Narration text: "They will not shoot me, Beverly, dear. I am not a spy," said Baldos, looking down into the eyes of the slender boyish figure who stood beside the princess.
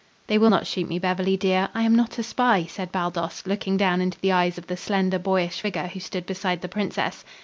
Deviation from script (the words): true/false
false